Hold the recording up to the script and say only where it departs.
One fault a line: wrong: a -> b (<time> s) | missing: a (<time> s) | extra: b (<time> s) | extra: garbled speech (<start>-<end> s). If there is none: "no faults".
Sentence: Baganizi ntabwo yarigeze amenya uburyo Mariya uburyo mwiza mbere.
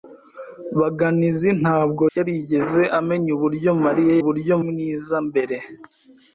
no faults